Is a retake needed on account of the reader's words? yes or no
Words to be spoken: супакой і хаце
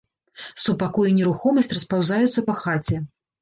yes